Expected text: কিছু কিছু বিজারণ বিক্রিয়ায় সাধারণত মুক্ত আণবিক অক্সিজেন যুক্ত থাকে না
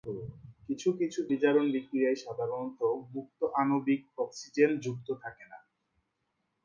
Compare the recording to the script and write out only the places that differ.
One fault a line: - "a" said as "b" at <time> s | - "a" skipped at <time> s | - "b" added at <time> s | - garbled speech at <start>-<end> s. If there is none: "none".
none